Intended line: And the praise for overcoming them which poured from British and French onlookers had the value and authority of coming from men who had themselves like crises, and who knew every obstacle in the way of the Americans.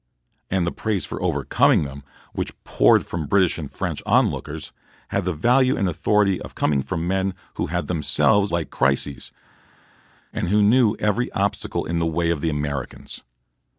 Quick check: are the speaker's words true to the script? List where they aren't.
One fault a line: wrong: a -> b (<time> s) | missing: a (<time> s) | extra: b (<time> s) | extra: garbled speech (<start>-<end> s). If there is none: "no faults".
no faults